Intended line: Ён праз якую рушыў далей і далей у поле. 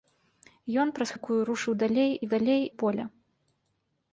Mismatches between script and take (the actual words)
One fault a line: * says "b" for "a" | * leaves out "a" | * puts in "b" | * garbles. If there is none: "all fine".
all fine